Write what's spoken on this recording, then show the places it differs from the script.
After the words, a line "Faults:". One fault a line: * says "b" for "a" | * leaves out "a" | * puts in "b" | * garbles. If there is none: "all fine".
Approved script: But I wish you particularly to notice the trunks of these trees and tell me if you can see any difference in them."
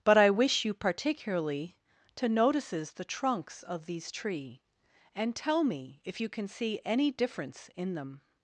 But I wish you particularly to notices the trunks of these tree and tell me if you can see any difference in them."
Faults:
* says "notices" for "notice"
* says "tree" for "trees"